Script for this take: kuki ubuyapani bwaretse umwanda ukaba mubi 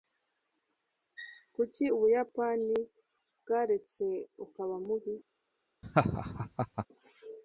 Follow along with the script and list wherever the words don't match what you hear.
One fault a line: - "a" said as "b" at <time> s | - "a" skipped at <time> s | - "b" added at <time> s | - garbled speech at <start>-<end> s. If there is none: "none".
- "umwanda" skipped at 4.1 s